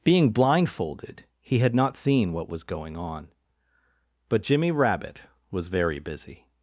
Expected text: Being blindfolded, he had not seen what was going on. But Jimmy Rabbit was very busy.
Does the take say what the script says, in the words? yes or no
yes